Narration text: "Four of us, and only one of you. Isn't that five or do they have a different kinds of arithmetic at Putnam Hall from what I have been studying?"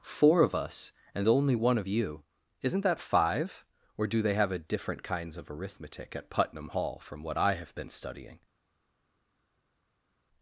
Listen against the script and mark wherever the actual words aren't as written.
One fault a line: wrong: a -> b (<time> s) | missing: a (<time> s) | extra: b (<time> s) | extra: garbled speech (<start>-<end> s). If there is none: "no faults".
no faults